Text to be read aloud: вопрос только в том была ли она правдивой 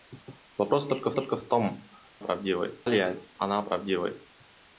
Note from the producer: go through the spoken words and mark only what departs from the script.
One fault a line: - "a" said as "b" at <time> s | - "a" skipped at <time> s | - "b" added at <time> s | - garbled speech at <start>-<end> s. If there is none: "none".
- "только" added at 1.1 s
- "была" said as "правдивой" at 2.2 s